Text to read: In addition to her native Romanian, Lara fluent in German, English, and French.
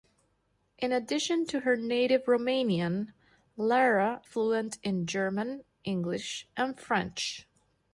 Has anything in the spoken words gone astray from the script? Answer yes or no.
no